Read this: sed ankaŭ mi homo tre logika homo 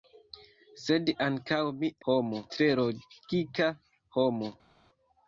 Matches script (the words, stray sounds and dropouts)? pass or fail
pass